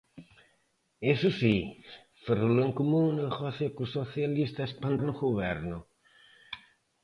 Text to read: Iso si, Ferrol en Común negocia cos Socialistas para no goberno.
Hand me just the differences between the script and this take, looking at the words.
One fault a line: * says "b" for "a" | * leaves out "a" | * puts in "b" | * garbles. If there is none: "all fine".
all fine